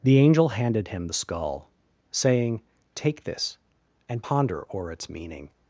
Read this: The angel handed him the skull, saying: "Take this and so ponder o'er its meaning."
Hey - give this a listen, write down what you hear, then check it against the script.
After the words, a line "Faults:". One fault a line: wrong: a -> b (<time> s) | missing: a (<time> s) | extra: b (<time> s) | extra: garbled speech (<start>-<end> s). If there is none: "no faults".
The angel handed him the skull, saying: "Take this and ponder o'er its meaning."
Faults:
missing: so (4.2 s)